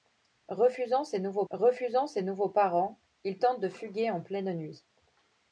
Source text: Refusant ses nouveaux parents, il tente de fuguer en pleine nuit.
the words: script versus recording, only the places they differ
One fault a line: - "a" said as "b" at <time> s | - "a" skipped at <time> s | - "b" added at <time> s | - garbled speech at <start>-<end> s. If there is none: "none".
- "refusant ses nouveaux" added at 1.5 s